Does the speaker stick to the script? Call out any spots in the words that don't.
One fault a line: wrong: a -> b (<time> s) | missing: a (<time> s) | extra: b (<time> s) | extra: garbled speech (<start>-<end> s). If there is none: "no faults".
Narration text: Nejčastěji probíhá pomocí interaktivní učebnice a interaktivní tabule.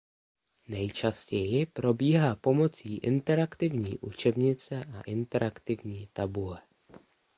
no faults